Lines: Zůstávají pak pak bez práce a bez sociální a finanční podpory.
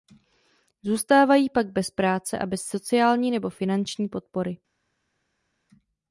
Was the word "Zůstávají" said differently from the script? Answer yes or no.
no